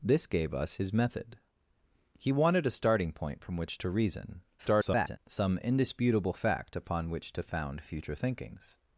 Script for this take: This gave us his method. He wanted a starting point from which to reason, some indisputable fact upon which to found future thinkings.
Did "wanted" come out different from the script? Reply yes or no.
no